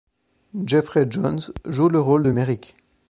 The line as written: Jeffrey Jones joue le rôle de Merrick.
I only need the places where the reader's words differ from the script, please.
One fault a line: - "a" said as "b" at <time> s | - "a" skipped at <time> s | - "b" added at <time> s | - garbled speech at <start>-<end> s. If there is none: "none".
none